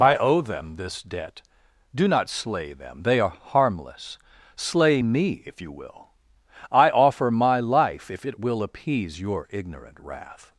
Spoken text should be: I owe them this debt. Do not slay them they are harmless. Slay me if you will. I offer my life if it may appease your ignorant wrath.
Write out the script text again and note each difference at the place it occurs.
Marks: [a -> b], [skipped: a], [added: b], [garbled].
I owe them this debt. Do not slay them they are harmless. Slay me if you will. I offer my life if it [may -> will] appease your ignorant wrath.